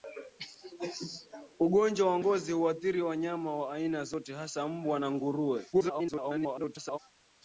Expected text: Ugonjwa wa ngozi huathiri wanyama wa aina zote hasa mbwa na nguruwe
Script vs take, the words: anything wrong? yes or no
yes